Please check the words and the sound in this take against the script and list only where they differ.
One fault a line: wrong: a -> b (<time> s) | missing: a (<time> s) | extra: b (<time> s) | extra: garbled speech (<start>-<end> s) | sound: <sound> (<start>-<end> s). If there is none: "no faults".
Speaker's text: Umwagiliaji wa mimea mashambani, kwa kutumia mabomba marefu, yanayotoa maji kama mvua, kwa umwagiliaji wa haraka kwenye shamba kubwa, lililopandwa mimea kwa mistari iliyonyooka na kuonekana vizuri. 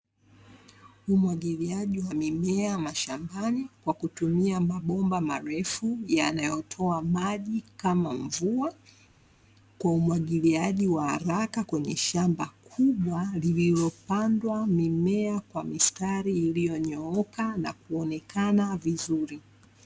no faults